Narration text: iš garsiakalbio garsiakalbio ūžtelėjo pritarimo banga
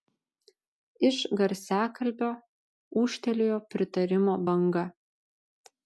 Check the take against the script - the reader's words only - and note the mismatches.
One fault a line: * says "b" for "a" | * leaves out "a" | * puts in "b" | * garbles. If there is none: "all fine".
* leaves out "garsiakalbio"